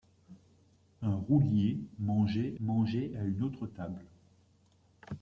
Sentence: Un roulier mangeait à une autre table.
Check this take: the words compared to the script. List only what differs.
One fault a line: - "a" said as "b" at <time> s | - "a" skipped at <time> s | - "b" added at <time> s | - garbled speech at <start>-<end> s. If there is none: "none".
- "mangeait" added at 2.6 s